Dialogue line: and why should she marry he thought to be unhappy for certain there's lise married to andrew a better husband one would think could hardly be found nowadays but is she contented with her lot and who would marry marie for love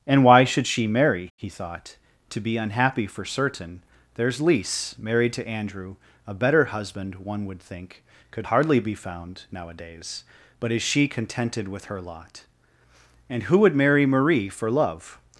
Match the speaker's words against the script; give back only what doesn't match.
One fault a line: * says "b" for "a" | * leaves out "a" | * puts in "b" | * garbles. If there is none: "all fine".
all fine